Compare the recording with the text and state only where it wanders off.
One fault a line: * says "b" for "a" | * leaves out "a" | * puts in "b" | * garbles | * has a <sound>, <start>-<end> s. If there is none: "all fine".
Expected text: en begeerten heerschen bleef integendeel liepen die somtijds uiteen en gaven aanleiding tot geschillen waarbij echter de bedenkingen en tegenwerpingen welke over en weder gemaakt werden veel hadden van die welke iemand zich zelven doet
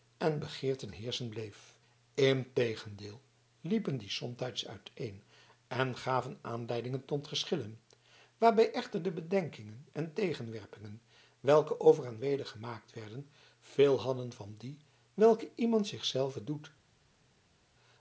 all fine